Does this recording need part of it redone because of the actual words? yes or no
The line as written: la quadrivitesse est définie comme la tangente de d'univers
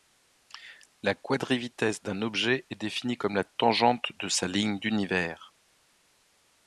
yes